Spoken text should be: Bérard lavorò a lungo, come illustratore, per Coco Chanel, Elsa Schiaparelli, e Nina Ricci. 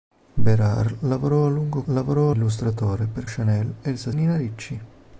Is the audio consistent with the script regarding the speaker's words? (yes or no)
no